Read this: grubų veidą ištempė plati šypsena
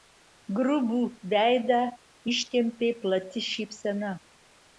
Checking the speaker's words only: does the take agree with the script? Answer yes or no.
yes